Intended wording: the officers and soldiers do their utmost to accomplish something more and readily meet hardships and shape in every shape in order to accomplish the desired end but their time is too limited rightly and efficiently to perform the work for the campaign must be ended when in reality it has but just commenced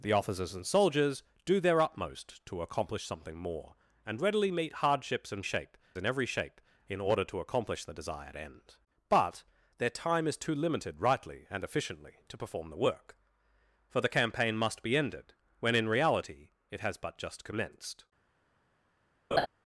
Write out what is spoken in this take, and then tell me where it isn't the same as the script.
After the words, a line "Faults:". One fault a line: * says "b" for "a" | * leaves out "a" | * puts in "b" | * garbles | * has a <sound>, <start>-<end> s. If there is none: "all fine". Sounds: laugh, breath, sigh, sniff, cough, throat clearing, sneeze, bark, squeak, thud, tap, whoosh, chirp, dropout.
the officers and soldiers do their utmost to accomplish something more and readily meet hardships and shape in every shape in order to accomplish the desired end but their time is too limited rightly and efficiently to perform the work for the campaign must be ended when in reality it has but just commenced
Faults:
* has a laugh, 19.3-19.5 s